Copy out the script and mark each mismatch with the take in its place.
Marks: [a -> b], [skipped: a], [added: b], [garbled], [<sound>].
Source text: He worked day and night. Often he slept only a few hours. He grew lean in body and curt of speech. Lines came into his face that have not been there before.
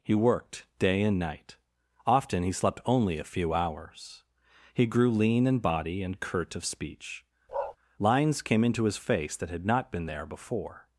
He worked day and night. Often he slept only a few hours. He grew lean in body and curt of speech. [bark] Lines came into his face that [have -> had] not been there before.